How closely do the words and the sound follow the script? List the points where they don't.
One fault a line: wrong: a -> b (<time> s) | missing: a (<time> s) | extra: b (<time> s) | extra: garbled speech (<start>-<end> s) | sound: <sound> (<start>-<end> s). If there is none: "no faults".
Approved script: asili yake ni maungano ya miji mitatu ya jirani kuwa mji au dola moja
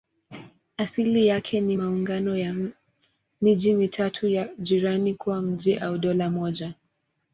no faults